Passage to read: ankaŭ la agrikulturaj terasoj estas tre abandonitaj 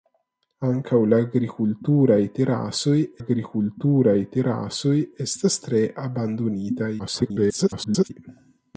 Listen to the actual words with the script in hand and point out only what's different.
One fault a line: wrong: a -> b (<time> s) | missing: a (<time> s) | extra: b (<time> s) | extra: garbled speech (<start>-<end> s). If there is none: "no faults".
extra: agrikulturaj terasoj (3.2 s)
extra: garbled speech (7.0-8.1 s)